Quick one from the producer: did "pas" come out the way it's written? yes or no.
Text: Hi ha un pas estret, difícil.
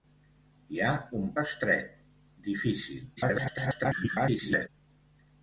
no